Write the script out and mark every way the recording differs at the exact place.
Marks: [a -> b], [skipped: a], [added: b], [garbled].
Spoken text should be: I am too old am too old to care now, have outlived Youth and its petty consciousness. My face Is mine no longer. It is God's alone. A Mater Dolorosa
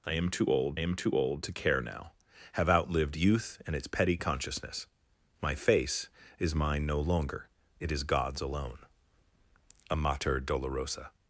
I am too old am too old to care now, have outlived Youth and its petty consciousness. My face Is mine no longer. It is God's alone. A Mater Dolorosa